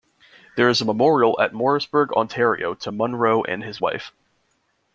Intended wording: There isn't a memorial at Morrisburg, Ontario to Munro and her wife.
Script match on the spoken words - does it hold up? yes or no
no